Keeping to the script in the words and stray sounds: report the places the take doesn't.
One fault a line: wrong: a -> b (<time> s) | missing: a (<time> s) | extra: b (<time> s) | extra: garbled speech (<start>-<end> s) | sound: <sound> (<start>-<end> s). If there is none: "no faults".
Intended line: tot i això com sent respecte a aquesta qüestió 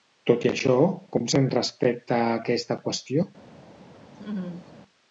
sound: laugh (4.1-4.7 s)